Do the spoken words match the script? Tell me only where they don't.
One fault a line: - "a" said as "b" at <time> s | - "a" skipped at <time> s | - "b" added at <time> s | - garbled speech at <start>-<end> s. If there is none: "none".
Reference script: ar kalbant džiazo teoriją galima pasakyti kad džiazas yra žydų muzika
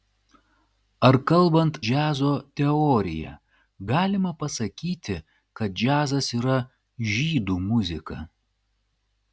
none